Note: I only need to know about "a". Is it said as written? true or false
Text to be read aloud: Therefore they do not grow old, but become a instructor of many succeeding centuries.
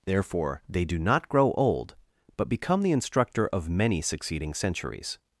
false